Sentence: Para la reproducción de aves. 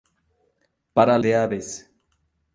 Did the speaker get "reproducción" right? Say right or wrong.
wrong